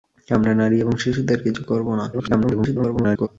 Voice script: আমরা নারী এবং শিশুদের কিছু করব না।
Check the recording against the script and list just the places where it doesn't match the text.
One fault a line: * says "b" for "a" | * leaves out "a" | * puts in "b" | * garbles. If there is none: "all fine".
* garbles